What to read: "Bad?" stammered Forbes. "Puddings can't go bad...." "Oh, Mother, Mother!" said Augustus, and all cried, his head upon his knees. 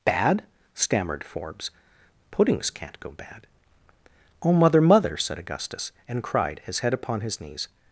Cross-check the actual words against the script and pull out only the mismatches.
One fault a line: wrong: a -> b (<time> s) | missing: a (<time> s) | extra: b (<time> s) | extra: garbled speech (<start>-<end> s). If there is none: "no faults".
missing: all (6.2 s)